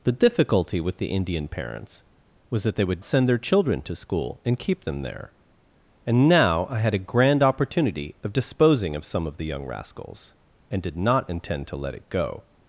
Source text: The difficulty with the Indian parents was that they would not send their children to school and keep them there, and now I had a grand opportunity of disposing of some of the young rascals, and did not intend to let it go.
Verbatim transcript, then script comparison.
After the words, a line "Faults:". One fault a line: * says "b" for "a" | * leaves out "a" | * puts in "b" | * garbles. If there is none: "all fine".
The difficulty with the Indian parents was that they would send their children to school and keep them there, and now I had a grand opportunity of disposing of some of the young rascals, and did not intend to let it go.
Faults:
* leaves out "not"